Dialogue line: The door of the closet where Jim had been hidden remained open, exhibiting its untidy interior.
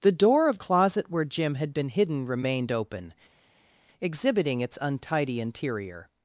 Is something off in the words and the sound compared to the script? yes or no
yes